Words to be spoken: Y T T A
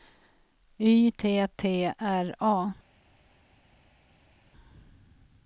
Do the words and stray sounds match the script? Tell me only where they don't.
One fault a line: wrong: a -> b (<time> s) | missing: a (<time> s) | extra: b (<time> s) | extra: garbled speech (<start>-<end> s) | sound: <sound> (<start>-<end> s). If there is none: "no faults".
extra: R (2.0 s)